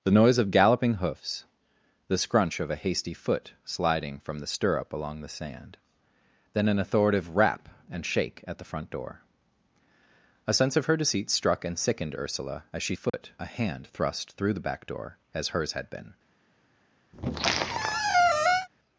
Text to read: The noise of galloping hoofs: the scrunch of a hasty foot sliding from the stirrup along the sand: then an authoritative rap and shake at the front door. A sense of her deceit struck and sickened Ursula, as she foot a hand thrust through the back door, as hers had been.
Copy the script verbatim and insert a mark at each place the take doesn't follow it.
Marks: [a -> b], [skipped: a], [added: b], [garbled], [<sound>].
The noise of galloping hoofs: the scrunch of a hasty foot sliding from the stirrup along the sand: then an authoritative rap and shake at the front door. A sense of her deceit struck and sickened Ursula, as she foot [dropout] a hand thrust through the back door, as hers had been. [squeak]